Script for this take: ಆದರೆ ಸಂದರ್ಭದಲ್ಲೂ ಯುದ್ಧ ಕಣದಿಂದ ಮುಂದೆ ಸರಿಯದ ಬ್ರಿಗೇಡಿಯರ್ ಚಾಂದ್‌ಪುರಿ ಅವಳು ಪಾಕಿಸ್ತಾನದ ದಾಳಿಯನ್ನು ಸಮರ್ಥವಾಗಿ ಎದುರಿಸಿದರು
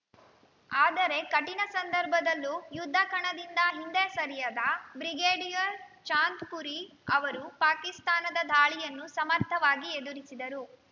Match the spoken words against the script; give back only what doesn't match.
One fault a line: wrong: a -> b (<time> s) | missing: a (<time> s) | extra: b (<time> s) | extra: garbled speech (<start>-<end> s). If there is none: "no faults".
extra: ಕಠಿಣ (1.2 s)
wrong: ಮುಂದೆ -> ಹಿಂದೆ (3.7 s)
wrong: ಅವಳು -> ಅವರು (7.1 s)